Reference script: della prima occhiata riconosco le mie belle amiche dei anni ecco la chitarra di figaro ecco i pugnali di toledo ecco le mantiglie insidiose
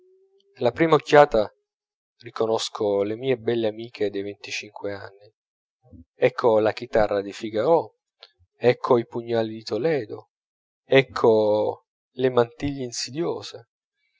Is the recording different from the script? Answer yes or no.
yes